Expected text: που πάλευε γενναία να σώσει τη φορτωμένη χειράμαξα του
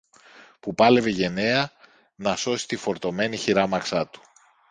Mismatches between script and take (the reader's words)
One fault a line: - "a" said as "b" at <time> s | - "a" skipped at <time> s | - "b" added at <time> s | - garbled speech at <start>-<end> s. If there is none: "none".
none